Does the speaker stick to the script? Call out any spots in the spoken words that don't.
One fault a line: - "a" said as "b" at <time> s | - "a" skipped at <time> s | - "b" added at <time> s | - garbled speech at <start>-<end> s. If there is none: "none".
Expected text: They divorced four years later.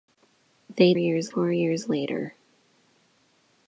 - "divorced" said as "years" at 1.0 s